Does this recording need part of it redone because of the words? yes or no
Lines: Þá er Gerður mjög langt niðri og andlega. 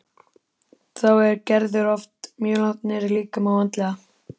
yes